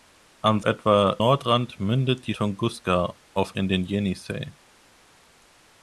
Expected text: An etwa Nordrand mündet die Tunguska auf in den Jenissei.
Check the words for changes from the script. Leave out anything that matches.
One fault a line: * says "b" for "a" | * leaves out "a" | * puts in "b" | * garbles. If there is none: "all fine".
all fine